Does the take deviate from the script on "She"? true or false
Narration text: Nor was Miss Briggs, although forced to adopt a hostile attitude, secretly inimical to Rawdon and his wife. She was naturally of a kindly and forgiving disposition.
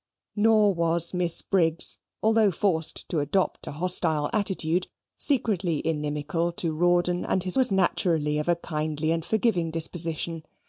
true